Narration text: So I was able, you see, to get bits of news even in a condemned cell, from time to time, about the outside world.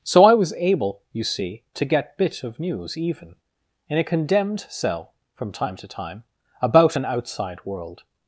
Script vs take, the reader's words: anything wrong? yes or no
yes